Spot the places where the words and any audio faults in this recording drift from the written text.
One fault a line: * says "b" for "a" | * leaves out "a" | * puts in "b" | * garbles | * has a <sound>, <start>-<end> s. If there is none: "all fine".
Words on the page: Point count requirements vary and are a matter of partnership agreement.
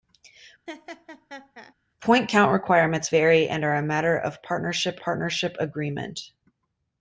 * has a laugh, 0.7-1.7 s
* puts in "partnership"